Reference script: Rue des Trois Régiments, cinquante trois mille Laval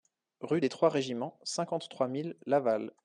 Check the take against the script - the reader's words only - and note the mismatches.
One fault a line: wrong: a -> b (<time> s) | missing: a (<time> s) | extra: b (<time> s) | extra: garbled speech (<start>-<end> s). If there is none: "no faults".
no faults